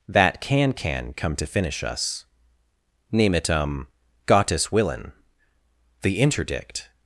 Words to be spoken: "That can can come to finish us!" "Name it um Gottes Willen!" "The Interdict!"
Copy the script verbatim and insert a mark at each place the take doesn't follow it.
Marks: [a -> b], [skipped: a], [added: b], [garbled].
"That can can come to finish us!" "Name it um Gottes Willen!" "The Interdict!"